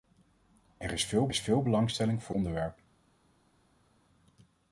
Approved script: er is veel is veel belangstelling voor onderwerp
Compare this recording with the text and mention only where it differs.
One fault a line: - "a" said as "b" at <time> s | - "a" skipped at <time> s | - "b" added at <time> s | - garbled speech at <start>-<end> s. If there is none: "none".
none